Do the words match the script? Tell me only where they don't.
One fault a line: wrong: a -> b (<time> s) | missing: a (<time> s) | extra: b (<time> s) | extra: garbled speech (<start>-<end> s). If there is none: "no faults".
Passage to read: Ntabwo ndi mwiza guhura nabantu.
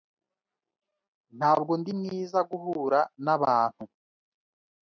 no faults